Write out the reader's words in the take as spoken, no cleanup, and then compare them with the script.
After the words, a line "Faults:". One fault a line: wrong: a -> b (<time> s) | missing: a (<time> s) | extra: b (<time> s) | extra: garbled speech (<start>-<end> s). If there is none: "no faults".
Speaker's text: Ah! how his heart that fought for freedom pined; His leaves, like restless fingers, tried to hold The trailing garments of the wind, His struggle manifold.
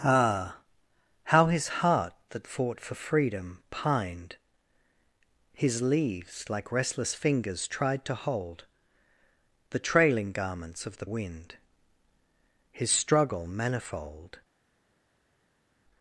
Ah! how his heart that fought for freedom pined; His leaves, like restless fingers, tried to hold The trailing garments of the wind, His struggle manifold.
Faults:
no faults